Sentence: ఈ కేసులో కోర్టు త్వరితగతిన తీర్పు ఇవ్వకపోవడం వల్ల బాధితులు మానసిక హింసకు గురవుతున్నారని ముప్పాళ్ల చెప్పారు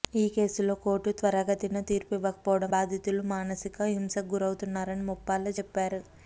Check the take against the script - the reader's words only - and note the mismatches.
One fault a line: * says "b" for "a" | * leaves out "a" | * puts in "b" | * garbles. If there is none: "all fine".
* leaves out "వల్ల"